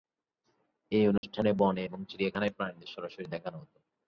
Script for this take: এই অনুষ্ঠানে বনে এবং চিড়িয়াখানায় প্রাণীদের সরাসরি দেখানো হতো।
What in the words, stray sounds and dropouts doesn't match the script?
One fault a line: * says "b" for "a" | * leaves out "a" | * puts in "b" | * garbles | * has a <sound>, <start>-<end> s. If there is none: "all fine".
* has a dropout, 1.2-1.2 s